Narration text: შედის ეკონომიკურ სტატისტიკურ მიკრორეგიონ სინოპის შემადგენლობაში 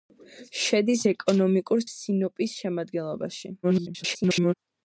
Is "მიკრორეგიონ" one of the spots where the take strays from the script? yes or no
yes